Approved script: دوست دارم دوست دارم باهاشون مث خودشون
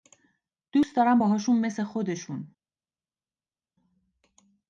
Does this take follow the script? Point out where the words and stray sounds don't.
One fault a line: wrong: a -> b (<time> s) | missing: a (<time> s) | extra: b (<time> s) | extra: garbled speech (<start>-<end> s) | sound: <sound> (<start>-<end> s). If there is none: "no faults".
missing: دوست دارم (1.2 s)